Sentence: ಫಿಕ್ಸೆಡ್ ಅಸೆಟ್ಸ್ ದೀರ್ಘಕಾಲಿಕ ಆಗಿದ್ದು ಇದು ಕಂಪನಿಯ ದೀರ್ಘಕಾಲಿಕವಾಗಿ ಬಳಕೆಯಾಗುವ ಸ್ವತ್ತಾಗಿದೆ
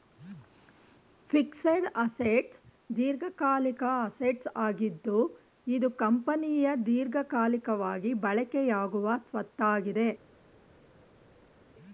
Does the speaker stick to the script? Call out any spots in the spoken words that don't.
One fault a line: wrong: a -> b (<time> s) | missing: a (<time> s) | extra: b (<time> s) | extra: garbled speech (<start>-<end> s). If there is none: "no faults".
extra: ಅಸೆಟ್ಸ್ (4.0 s)